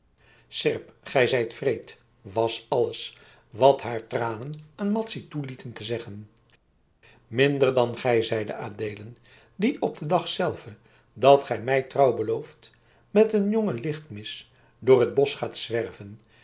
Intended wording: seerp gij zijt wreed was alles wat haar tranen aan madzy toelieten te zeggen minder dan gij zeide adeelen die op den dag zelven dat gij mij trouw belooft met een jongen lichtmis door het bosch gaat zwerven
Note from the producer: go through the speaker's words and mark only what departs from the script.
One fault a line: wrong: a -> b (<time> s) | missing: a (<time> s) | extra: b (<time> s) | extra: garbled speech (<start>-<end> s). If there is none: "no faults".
no faults